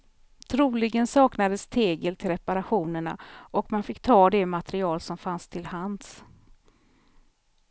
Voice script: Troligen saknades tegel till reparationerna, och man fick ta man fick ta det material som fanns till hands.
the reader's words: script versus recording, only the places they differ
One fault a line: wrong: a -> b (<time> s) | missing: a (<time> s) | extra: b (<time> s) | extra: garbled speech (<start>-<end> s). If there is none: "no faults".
missing: man fick ta (4.3 s)